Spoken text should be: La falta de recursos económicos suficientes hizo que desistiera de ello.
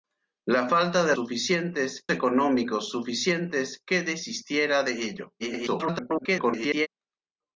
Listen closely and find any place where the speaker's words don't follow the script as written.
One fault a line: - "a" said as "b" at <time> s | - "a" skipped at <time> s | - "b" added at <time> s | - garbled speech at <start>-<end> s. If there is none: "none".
- "recursos" said as "suficientes" at 1.1 s
- "hizo" skipped at 3.8 s
- garbled speech at 5.4-6.9 s